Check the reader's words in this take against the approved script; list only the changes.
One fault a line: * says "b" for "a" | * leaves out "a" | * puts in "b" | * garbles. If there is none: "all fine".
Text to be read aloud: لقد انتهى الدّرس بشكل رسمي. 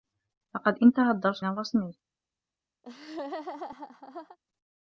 * leaves out "بشكل"